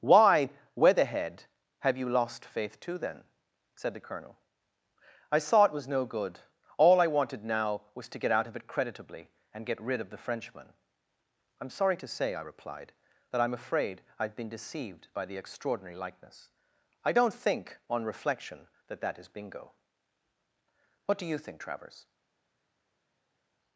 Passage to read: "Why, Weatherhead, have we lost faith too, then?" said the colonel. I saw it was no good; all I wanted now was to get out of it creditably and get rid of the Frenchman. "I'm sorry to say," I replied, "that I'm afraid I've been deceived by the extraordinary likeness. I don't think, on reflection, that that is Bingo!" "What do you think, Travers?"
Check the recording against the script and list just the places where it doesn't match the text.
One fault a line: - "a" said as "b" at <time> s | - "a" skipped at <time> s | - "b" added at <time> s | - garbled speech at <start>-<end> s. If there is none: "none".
- "we" said as "you" at 1.9 s